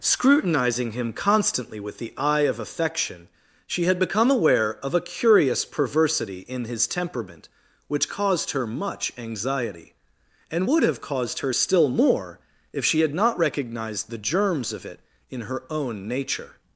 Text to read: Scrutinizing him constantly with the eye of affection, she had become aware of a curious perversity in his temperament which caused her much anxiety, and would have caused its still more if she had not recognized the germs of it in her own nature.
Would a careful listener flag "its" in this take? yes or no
yes